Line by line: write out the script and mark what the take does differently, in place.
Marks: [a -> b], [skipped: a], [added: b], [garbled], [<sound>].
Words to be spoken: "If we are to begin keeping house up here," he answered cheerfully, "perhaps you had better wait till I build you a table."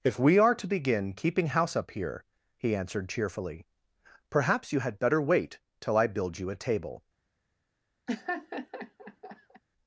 "If we are to begin keeping house up here," he answered cheerfully, "perhaps you had better wait till I build you a table." [laugh]